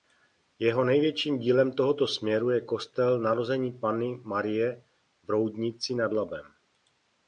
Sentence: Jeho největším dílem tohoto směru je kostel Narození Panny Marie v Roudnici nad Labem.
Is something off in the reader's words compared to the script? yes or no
no